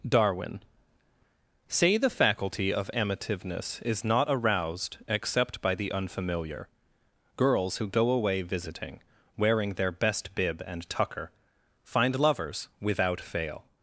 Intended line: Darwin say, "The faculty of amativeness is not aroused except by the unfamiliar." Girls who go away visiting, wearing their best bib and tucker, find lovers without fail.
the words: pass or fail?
pass